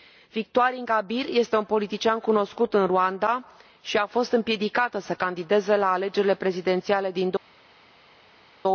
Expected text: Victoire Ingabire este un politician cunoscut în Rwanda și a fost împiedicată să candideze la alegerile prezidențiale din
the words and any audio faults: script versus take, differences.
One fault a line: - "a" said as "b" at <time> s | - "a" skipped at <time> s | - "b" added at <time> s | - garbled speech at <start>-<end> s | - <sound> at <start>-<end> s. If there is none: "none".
none